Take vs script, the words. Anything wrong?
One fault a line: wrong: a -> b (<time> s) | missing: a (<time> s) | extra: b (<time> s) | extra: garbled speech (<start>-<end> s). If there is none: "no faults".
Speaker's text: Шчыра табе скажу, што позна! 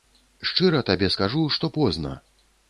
no faults